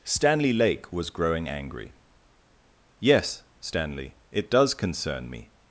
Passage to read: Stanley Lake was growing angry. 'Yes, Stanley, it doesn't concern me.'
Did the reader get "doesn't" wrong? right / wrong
wrong